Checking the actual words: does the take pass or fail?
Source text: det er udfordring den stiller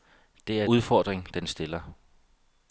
pass